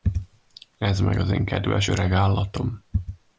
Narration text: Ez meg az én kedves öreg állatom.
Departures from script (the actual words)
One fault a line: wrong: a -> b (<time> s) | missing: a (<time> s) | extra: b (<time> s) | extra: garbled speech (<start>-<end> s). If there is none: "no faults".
no faults